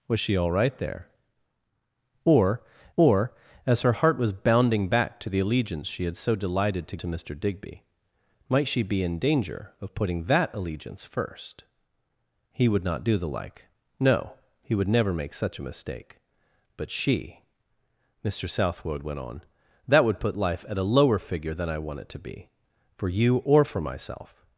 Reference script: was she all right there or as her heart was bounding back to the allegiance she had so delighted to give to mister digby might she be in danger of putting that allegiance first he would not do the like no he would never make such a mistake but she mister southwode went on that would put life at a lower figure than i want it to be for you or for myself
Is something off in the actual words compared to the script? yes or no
yes